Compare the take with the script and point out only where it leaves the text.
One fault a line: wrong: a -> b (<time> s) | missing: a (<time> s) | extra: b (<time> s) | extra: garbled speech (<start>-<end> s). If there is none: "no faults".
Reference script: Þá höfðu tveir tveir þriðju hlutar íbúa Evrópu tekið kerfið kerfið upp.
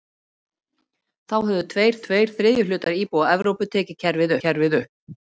no faults